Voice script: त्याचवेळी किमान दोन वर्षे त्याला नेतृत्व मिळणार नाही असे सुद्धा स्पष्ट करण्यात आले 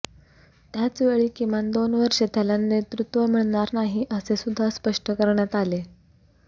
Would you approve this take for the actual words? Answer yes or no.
yes